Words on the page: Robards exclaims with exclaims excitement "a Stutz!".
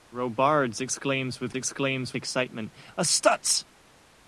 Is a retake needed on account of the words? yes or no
no